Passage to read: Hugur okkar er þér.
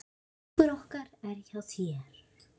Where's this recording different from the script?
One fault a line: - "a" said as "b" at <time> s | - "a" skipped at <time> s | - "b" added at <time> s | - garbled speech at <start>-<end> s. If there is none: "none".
- "hjá" added at 1.5 s